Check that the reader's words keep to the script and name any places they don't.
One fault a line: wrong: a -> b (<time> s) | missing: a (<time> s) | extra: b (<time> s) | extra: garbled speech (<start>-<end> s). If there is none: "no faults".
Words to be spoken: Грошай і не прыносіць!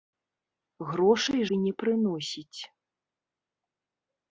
no faults